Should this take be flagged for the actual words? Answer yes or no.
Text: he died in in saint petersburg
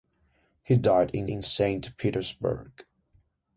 no